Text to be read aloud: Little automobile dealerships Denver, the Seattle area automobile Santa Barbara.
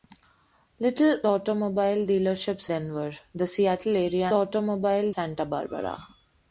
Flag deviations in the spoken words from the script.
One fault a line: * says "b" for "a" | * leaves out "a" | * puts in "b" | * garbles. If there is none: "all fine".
all fine